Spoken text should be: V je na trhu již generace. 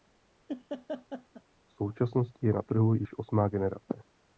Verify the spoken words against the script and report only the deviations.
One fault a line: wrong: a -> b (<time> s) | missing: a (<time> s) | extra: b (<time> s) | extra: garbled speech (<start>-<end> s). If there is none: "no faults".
extra: současnosti (1.7 s)
extra: osmá (3.2 s)